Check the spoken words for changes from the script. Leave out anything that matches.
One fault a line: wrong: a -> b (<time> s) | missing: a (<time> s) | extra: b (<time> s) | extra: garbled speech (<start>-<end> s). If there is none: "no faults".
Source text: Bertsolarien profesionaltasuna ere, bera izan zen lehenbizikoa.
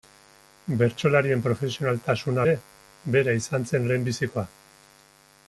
no faults